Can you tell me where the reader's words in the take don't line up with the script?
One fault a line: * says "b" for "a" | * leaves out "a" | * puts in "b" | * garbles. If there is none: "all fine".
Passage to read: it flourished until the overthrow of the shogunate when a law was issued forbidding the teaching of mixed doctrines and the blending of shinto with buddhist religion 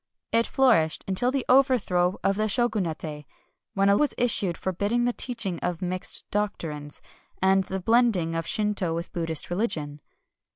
* leaves out "law"